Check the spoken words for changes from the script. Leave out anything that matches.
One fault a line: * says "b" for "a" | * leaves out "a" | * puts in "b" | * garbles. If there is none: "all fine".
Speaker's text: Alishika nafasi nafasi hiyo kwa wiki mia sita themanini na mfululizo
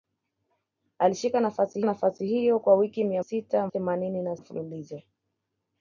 all fine